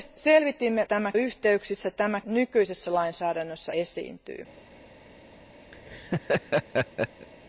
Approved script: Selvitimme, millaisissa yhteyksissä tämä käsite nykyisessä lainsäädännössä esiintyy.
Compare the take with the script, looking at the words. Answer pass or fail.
fail